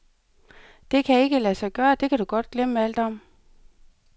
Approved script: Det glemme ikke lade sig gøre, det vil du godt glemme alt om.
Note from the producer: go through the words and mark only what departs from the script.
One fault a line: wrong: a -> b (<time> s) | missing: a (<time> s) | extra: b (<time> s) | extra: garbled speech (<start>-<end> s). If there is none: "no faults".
wrong: glemme -> kan (1.1 s)
wrong: vil -> kan (2.1 s)